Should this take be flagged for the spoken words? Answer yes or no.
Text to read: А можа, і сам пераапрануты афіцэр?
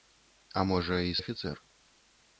yes